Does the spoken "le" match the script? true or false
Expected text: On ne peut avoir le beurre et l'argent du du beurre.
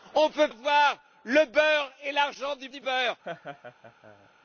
true